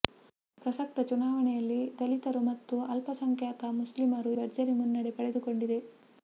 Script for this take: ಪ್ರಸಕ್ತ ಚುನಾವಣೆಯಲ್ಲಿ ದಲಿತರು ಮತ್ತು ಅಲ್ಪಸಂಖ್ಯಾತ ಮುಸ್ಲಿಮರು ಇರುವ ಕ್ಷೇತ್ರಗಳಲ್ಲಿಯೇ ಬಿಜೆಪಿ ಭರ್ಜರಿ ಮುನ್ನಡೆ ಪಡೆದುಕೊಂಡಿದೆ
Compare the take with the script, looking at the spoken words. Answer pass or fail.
fail